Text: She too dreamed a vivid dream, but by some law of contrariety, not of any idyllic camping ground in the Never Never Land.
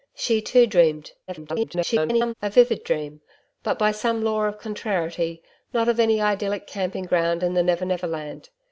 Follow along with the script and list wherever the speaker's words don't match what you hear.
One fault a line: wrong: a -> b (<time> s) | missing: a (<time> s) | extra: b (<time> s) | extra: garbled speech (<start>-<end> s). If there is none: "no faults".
extra: garbled speech (1.3-2.3 s)